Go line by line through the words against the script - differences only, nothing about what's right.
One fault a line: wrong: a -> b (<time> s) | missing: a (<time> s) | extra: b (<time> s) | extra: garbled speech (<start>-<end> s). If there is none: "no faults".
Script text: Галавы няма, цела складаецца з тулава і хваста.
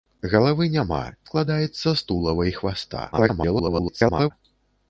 missing: цела (1.0 s)
extra: garbled speech (3.1-4.3 s)